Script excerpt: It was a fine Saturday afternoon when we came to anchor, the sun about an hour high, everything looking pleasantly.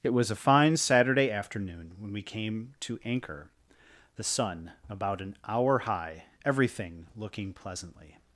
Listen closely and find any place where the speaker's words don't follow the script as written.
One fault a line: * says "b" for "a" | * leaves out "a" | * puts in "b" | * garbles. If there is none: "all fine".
all fine